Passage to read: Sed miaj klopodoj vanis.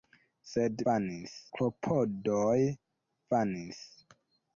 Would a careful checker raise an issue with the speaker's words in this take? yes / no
yes